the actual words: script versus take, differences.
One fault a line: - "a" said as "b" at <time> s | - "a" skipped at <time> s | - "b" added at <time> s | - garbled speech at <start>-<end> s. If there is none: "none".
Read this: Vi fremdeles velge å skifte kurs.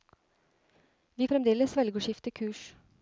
none